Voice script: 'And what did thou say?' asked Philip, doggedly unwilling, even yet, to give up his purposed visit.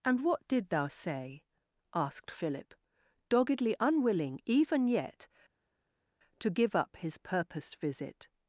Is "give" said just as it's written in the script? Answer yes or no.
yes